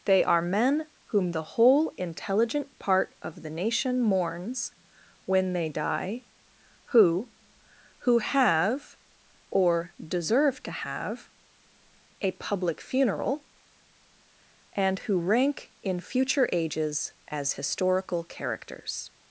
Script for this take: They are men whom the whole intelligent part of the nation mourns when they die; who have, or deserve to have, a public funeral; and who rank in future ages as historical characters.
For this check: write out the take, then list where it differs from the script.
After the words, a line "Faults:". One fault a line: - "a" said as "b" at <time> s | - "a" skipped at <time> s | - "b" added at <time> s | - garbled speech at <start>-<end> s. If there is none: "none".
They are men whom the whole intelligent part of the nation mourns when they die; who who have, or deserve to have, a public funeral; and who rank in future ages as historical characters.
Faults:
- "who" added at 8.0 s